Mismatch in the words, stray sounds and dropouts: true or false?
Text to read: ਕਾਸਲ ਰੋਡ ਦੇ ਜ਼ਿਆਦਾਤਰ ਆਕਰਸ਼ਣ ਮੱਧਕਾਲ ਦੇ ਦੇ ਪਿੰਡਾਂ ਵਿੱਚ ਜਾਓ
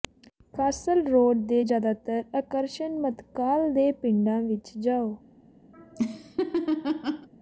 true